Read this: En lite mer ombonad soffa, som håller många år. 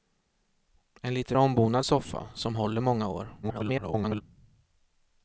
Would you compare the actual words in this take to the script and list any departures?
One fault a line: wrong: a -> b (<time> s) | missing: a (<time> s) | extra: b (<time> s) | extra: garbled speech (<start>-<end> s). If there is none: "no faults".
missing: mer (1.4 s)
extra: garbled speech (3.4-4.2 s)